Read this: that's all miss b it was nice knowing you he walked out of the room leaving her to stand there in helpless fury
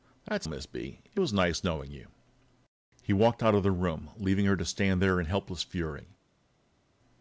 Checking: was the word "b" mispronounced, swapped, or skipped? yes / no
no